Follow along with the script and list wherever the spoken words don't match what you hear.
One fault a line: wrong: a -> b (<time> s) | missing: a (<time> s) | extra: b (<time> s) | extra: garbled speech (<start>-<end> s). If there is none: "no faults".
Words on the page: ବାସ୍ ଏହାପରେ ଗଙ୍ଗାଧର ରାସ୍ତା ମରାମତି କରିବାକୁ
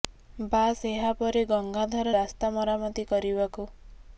no faults